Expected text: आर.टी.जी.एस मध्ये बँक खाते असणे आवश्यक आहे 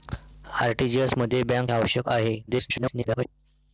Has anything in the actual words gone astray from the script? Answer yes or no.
yes